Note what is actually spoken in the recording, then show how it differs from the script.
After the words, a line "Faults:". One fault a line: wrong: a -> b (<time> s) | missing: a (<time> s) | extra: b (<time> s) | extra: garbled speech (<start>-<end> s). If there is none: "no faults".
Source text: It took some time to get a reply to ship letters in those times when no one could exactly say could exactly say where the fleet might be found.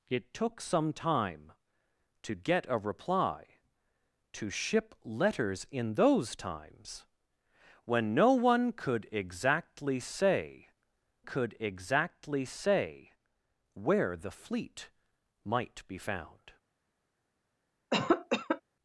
It took some time to get a reply to ship letters in those times when no one could exactly say could exactly say where the fleet might be found.
Faults:
no faults